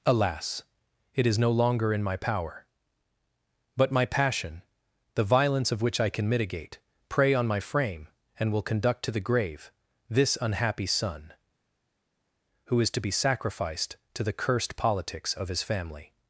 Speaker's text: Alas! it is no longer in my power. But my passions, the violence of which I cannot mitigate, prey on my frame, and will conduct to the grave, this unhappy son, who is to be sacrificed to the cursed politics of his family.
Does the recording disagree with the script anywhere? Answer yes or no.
yes